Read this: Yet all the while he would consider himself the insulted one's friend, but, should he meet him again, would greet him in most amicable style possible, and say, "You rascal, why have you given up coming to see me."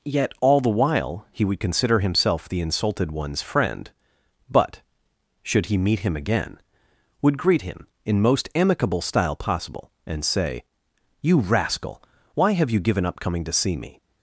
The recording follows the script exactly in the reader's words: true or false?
true